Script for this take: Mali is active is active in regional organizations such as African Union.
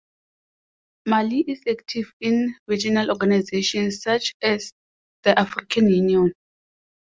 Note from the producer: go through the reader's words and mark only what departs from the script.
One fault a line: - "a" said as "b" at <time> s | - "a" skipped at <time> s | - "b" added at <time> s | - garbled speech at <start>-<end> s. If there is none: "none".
- "is active" skipped at 2.1 s
- "the" added at 5.2 s